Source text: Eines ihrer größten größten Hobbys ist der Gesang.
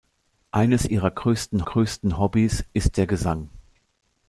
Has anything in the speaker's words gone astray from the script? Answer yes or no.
no